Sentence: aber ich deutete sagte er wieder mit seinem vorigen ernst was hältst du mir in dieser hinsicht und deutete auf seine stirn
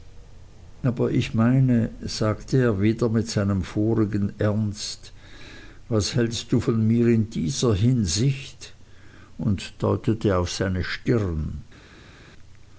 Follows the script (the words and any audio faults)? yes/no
no